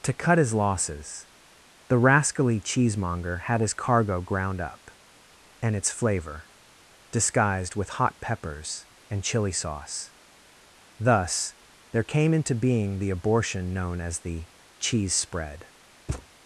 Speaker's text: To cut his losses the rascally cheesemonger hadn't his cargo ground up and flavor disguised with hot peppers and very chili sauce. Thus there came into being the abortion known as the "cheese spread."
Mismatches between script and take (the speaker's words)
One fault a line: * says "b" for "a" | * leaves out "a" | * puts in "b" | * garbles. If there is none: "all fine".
* says "had" for "hadn't"
* puts in "its"
* leaves out "very"